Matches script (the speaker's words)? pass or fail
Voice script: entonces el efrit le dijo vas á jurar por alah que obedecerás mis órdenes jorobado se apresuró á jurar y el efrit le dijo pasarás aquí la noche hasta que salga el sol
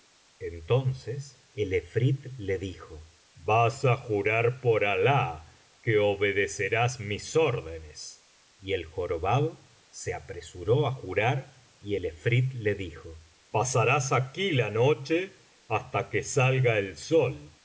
fail